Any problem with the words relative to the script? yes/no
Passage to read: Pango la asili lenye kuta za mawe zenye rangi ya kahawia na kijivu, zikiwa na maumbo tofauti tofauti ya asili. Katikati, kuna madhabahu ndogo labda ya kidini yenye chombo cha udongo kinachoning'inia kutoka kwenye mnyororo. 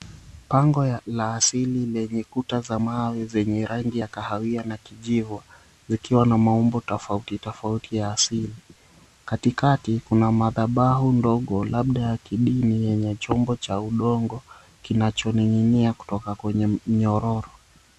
no